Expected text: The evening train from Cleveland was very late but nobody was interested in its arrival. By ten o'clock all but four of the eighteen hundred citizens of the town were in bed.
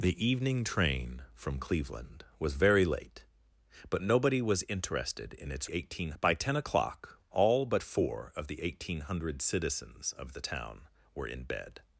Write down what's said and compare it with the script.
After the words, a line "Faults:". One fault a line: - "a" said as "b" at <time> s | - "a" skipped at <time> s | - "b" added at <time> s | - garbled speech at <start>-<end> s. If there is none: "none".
The evening train from Cleveland was very late but nobody was interested in its eighteen. By ten o'clock all but four of the eighteen hundred citizens of the town were in bed.
Faults:
- "arrival" said as "eighteen" at 5.7 s